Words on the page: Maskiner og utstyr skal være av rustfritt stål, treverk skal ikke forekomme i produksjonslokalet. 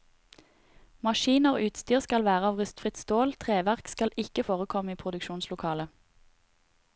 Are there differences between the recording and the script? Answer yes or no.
no